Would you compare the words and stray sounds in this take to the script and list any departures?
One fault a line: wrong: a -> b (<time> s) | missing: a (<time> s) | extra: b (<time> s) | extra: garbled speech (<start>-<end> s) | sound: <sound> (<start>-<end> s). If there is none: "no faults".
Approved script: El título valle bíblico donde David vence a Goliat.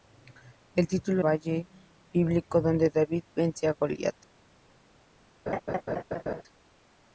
sound: laugh (5.5-6.4 s)